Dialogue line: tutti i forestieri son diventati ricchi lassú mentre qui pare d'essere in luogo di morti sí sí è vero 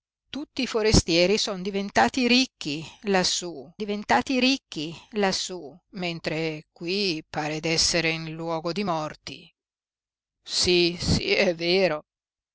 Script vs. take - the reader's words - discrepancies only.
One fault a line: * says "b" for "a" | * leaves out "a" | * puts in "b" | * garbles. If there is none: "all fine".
* puts in "diventati ricchi lassú"